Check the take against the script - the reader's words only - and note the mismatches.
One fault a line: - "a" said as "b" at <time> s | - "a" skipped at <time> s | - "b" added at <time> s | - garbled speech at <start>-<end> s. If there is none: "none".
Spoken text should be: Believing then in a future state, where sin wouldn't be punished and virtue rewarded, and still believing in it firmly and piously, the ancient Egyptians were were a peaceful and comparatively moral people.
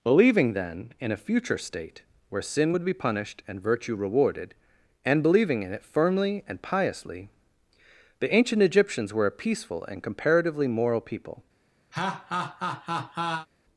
- "wouldn't" said as "would" at 2.7 s
- "still" skipped at 5.2 s
- "were" skipped at 9.2 s